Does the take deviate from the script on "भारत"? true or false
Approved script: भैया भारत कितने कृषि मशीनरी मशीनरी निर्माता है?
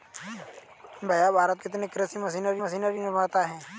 false